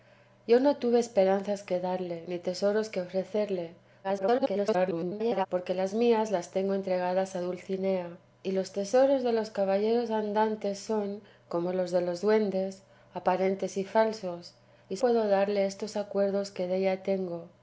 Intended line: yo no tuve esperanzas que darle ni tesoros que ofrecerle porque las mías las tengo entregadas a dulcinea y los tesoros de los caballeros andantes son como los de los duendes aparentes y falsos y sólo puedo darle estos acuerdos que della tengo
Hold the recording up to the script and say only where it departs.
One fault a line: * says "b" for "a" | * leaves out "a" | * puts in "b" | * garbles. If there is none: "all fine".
* garbles
* leaves out "sólo"